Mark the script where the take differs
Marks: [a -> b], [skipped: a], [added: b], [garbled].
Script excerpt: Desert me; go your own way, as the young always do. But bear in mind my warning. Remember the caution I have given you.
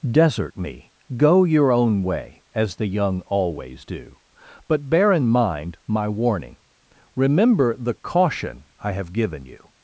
Desert me; go your own way, as the young always do. But bear in mind my warning. Remember the caution I have given you.